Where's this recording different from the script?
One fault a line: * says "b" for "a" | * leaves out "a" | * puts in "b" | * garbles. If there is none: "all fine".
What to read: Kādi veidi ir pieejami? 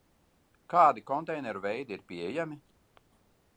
* puts in "konteineru"